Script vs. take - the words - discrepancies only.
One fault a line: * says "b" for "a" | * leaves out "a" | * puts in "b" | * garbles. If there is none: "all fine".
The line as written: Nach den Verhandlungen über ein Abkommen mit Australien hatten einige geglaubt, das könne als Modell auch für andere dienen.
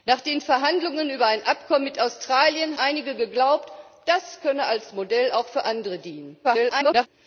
* leaves out "hatten"
* garbles